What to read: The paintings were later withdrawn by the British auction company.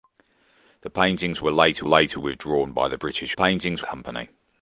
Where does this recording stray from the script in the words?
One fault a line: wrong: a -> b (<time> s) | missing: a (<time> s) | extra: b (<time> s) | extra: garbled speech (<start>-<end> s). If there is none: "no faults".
extra: later (1.8 s)
wrong: auction -> paintings (3.3 s)